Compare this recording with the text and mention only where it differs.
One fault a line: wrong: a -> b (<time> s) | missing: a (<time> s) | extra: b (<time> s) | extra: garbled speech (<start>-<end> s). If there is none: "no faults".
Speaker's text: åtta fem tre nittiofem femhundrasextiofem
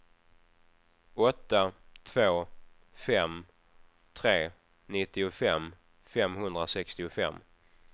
extra: två (2.0 s)